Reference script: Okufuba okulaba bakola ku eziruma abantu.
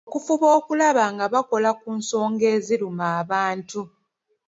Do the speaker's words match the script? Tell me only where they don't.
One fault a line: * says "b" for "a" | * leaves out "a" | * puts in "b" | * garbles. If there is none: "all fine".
* puts in "nga"
* puts in "nsonga"